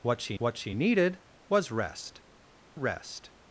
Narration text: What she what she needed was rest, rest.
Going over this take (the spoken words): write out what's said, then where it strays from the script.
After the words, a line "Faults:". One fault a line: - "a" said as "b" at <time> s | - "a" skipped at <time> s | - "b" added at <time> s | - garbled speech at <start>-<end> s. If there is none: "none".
What she what she needed was rest, rest.
Faults:
none